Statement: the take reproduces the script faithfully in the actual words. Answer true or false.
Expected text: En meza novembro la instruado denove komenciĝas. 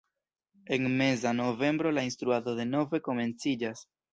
true